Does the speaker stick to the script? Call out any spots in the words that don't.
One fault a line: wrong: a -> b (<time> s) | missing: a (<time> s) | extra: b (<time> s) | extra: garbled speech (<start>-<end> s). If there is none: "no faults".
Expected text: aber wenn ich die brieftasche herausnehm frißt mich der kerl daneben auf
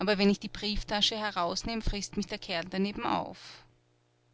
no faults